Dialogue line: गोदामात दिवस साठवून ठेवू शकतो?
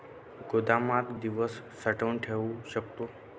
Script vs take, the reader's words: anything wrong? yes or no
no